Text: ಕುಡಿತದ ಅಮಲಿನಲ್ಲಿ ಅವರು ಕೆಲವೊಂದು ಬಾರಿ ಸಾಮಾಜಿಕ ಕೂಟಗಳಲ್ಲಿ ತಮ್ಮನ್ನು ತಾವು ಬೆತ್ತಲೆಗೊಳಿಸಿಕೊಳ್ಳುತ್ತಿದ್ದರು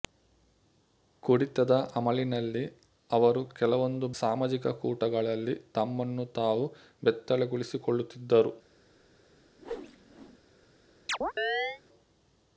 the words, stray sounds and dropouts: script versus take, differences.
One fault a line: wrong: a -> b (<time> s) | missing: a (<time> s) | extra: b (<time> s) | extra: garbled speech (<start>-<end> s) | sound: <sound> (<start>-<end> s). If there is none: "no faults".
missing: ಬಾರಿ (4.1 s)
sound: whoosh (9.6-10.4 s)
sound: chirp (11.1-11.8 s)